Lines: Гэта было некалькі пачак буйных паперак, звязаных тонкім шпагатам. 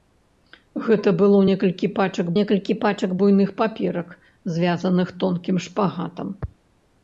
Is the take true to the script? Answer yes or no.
no